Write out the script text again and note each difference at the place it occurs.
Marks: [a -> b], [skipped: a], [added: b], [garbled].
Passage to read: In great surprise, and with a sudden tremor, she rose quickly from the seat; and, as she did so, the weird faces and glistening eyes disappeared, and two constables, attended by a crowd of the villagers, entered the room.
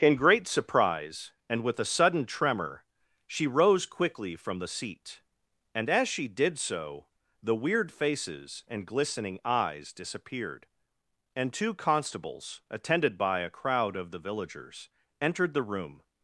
In great surprise, and with a sudden tremor, she rose quickly from the seat; and, as she did so, the weird faces and glistening eyes disappeared, and two constables, attended by a crowd of the villagers, entered the room.